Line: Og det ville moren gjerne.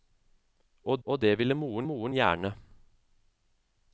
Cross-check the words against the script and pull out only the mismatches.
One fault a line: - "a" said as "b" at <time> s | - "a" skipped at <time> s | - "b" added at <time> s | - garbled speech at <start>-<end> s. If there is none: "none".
- "og" added at 1.0 s
- "moren" added at 1.8 s